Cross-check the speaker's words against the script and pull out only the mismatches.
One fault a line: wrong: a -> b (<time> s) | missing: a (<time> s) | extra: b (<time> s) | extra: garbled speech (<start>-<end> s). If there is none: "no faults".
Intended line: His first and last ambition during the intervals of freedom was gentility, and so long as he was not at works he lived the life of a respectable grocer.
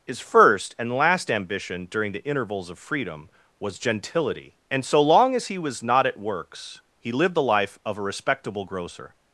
no faults